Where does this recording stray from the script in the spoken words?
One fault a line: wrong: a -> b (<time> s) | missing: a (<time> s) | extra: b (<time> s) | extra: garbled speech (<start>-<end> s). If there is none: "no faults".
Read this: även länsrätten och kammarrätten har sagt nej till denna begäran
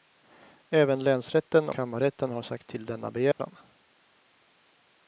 missing: och (1.7 s)
missing: nej (2.7 s)